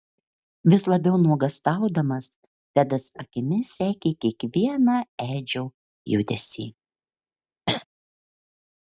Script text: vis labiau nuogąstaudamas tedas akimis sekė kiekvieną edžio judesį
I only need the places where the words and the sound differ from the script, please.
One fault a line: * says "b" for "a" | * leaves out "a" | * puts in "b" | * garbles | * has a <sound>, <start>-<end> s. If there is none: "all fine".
* has a throat clearing, 7.7-7.8 s